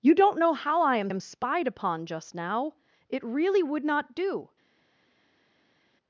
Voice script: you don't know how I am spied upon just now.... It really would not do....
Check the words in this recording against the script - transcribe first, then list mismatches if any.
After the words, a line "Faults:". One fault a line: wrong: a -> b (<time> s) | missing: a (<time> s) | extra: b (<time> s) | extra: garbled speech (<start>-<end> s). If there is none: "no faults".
you don't know how I am am spied upon just now.... It really would not do....
Faults:
extra: am (1.1 s)